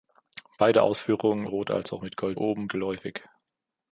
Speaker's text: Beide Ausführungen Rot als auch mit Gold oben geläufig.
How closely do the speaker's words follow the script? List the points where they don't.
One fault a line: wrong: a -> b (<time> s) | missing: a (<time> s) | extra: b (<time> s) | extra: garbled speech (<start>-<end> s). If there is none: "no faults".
no faults